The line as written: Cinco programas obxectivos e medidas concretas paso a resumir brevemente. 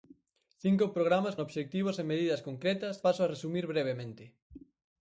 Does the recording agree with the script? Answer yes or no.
yes